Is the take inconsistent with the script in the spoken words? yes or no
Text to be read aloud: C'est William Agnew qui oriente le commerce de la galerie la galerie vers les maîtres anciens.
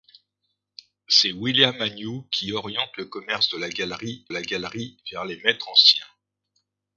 no